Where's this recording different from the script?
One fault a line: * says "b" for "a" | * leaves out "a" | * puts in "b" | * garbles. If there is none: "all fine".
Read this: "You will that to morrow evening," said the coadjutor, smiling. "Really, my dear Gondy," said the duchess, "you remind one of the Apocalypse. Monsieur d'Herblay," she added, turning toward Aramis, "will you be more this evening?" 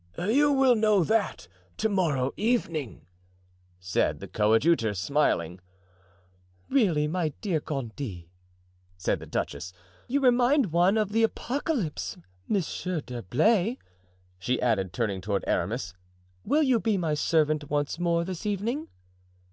* puts in "know"
* puts in "my servant once"